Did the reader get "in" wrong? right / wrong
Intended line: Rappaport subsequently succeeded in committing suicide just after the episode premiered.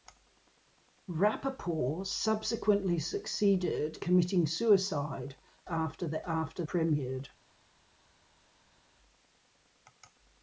wrong